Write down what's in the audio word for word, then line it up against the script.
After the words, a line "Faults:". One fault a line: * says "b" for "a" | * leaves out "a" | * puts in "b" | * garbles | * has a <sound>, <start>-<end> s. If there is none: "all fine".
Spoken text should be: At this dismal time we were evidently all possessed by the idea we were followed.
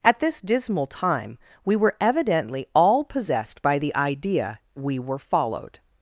At this dismal time we were evidently all possessed by the idea we were followed.
Faults:
all fine